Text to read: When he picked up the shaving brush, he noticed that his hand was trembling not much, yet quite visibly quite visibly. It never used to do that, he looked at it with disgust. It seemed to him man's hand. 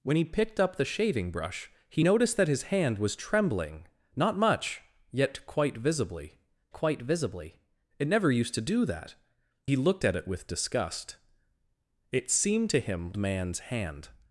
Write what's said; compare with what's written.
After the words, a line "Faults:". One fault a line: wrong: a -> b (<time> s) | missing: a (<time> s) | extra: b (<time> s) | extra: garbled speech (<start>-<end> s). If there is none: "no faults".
When he picked up the shaving brush, he noticed that his hand was trembling not much, yet quite visibly quite visibly. It never used to do that, he looked at it with disgust. It seemed to him man's hand.
Faults:
no faults